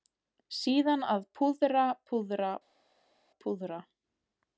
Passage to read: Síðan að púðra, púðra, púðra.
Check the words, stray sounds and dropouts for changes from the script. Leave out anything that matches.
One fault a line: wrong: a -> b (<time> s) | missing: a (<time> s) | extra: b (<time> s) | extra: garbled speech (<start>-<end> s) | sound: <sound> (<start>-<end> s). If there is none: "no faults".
no faults